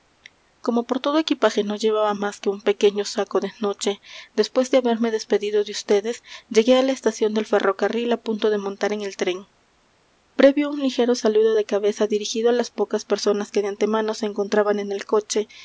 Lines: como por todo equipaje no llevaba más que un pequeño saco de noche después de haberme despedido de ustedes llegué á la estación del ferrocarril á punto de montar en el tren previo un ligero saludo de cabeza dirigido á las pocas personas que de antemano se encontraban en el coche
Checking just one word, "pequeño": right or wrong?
right